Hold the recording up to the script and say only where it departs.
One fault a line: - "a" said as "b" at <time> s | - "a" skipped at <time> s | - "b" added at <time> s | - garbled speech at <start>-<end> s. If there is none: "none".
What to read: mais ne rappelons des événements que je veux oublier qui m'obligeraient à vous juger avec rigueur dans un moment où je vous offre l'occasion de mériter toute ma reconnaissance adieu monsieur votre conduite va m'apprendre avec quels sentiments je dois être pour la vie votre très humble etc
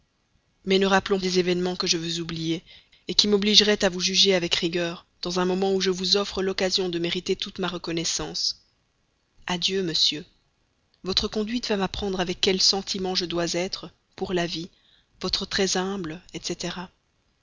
none